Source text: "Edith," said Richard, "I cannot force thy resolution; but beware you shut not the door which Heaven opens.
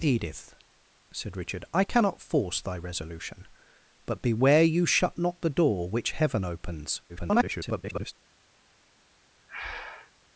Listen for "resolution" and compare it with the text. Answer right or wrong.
right